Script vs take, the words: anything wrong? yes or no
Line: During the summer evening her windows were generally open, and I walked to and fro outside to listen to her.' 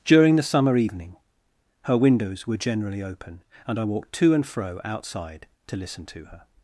no